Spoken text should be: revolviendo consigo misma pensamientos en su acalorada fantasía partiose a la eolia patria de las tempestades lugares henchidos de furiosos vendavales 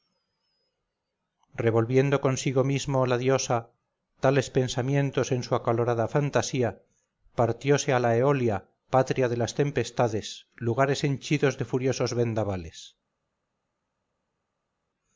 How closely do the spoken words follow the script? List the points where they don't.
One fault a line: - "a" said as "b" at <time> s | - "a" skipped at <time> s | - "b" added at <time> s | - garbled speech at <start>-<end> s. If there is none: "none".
- "la diosa tales" added at 3.0 s